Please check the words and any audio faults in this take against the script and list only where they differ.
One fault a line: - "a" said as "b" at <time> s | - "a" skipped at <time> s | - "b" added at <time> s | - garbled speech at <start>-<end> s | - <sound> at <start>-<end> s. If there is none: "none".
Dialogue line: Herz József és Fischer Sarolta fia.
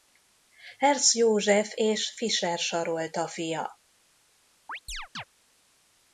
- chirp at 4.7-5.2 s